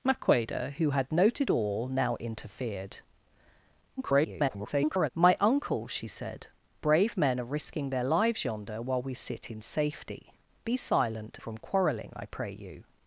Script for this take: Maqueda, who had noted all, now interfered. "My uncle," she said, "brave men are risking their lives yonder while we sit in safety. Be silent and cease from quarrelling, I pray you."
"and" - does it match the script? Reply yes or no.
no